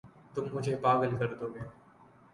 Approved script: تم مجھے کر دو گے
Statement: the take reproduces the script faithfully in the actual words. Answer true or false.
false